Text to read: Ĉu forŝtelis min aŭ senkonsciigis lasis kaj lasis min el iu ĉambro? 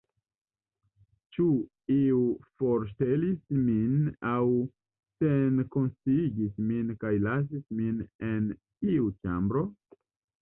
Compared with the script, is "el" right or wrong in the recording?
wrong